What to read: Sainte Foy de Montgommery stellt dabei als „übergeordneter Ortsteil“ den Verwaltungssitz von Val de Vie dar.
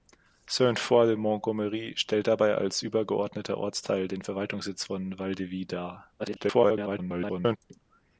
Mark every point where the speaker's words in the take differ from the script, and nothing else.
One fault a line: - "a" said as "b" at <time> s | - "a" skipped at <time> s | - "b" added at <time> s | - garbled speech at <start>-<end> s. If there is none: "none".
- garbled speech at 6.2-7.6 s